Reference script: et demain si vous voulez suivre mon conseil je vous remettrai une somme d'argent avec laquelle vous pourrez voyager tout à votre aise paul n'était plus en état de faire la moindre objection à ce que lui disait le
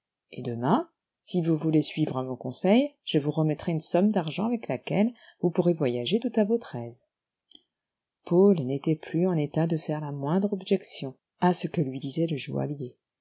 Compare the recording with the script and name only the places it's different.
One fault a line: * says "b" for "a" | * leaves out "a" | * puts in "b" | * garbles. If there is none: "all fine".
all fine